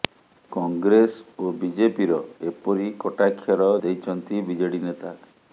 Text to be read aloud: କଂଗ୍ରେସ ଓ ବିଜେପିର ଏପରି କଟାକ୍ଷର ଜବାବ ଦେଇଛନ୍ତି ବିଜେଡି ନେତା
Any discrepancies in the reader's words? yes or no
yes